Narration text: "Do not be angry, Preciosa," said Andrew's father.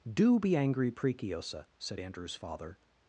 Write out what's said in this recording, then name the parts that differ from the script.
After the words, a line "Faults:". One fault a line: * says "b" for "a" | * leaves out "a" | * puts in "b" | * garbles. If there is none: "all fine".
"Do be angry, Preciosa," said Andrew's father.
Faults:
* leaves out "not"